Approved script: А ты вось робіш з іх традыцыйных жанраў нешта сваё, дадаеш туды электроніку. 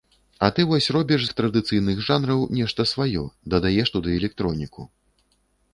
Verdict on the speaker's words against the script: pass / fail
fail